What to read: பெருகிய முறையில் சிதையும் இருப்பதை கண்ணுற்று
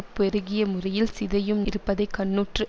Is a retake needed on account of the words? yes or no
no